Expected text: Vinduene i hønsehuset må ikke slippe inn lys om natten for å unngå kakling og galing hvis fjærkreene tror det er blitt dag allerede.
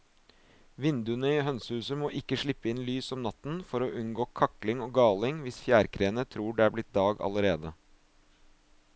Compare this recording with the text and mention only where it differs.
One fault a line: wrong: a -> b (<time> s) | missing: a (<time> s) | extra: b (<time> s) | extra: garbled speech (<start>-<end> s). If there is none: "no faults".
no faults